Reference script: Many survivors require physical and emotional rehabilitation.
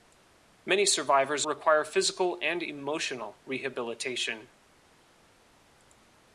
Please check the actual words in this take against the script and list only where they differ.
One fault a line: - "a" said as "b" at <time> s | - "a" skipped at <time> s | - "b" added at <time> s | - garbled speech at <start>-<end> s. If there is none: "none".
none